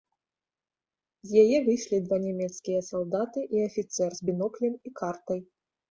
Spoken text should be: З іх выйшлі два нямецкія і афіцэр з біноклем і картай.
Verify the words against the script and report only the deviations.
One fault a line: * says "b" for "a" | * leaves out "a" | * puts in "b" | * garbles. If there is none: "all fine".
* says "яе" for "іх"
* puts in "салдаты"